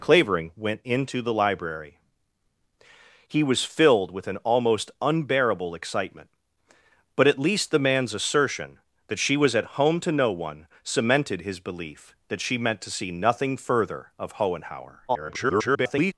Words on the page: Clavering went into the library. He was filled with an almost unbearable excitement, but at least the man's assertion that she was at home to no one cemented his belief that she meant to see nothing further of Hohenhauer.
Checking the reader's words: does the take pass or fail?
fail